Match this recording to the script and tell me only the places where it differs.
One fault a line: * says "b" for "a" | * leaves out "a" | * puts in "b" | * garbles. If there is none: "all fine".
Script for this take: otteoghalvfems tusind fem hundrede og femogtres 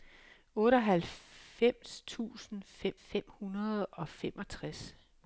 * puts in "fem"